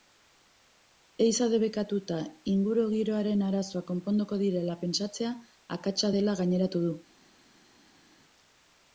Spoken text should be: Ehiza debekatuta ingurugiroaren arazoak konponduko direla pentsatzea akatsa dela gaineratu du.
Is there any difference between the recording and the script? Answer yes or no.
no